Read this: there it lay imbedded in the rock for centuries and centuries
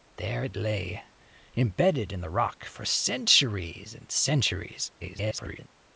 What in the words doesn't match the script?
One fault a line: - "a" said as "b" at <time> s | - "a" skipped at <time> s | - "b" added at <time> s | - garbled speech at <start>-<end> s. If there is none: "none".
- garbled speech at 5.0-5.7 s